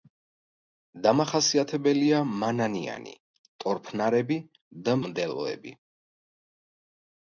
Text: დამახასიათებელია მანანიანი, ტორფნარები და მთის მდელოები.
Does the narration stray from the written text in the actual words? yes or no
yes